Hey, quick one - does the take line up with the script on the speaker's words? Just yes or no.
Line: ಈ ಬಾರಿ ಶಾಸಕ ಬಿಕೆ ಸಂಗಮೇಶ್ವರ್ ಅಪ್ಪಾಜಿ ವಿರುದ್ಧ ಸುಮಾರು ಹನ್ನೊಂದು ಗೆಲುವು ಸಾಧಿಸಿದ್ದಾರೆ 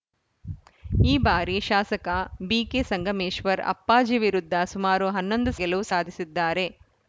yes